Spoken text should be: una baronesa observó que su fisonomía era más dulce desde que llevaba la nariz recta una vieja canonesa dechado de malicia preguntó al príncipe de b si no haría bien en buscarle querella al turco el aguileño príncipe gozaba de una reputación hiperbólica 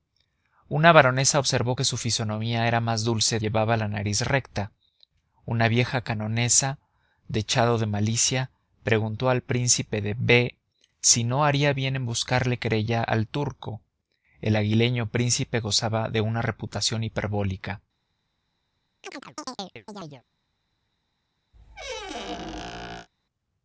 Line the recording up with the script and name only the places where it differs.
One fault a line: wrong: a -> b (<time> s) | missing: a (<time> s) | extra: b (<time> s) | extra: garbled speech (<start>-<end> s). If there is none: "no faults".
missing: desde que (3.4 s)